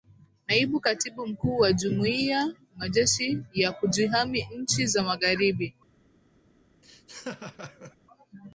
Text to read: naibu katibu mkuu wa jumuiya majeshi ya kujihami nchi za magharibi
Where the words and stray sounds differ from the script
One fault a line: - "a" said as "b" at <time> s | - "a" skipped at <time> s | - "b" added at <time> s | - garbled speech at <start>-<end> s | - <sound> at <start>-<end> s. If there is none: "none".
- laugh at 6.8-8.0 s